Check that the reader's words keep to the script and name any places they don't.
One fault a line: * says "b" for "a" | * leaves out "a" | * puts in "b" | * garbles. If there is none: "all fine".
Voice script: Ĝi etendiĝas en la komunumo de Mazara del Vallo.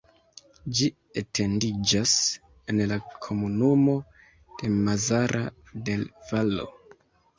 all fine